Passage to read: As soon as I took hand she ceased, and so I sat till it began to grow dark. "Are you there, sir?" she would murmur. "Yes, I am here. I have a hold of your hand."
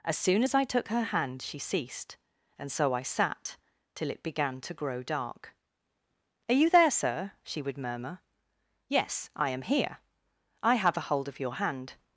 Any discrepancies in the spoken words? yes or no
yes